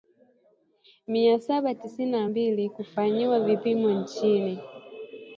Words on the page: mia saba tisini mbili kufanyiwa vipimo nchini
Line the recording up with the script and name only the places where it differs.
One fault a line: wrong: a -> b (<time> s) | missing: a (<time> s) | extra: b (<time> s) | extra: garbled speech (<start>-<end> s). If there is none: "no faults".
extra: na (2.1 s)